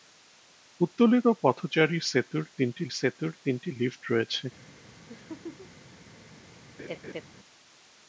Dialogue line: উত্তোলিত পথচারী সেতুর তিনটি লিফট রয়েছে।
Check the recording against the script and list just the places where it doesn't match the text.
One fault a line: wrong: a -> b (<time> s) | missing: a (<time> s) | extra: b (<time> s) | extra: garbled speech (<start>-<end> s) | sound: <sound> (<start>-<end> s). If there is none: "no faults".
extra: সেতুর তিনটি (3.0 s)
sound: laugh (5.1-5.7 s)
sound: laugh (6.8-7.2 s)